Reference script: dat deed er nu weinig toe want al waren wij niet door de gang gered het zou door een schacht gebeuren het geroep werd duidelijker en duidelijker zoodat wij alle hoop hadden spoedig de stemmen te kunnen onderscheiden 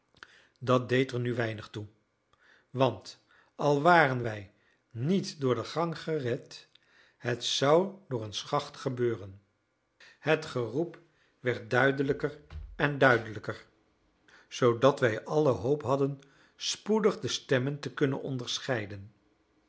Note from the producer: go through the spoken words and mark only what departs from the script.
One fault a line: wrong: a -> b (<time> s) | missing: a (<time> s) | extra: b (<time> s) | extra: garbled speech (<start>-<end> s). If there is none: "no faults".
no faults